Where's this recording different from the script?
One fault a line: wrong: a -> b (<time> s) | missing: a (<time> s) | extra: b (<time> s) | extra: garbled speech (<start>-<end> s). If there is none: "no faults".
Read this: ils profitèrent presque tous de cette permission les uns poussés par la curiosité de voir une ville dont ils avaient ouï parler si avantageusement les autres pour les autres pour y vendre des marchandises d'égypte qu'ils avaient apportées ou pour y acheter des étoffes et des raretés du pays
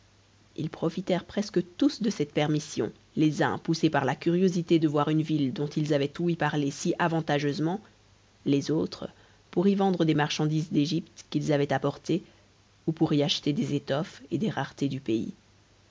missing: les autres pour (9.7 s)